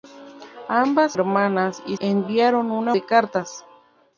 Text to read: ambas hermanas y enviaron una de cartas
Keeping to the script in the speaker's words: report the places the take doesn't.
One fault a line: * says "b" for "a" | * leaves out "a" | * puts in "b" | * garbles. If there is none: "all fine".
all fine